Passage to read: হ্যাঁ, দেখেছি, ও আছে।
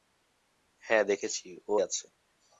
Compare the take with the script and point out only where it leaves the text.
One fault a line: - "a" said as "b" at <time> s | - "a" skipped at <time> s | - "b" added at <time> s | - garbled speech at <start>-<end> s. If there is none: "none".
none